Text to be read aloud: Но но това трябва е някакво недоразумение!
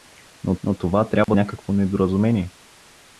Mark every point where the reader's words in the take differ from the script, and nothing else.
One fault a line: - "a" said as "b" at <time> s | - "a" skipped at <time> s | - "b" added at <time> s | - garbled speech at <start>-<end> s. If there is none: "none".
none